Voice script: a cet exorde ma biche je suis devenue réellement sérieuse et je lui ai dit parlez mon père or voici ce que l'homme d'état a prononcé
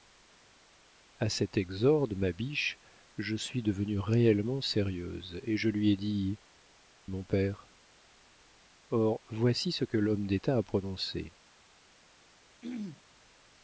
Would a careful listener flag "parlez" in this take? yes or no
yes